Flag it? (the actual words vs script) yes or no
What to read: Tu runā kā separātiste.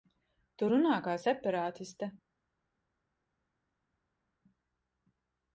no